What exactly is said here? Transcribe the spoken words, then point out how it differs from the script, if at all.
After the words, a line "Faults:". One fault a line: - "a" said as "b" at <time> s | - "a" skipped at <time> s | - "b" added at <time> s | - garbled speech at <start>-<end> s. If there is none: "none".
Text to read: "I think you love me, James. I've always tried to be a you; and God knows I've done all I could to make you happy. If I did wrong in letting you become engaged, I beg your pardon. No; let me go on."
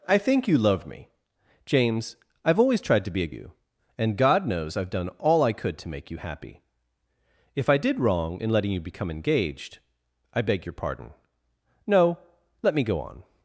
"I think you love me, James. I've always tried to be a you; and God knows I've done all I could to make you happy. If I did wrong in letting you become engaged, I beg your pardon. No; let me go on."
Faults:
none